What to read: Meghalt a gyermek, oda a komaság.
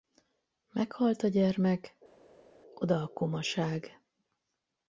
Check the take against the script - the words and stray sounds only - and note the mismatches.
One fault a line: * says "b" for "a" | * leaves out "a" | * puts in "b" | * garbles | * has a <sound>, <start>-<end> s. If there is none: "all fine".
all fine